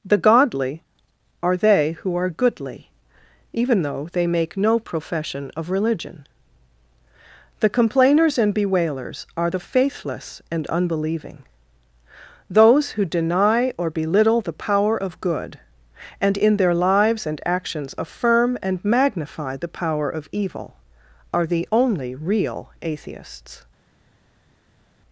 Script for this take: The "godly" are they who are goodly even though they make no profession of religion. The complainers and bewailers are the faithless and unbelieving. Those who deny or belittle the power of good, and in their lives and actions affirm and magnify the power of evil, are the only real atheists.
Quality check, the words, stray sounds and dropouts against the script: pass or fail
pass